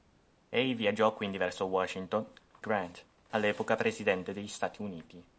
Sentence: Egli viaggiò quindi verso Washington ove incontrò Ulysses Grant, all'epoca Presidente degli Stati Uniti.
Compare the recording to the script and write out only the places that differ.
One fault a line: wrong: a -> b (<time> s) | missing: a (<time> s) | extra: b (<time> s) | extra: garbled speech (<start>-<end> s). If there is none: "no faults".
missing: ove incontrò Ulysses (2.3 s)